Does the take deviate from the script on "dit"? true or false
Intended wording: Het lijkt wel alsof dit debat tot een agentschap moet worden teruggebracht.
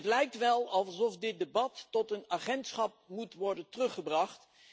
false